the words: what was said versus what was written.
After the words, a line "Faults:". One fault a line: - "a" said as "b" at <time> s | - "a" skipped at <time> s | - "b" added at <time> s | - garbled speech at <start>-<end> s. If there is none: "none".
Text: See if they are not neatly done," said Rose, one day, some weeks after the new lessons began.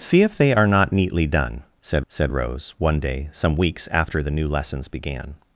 See if they are not neatly done," said said Rose, one day, some weeks after the new lessons began.
Faults:
- "said" added at 2.1 s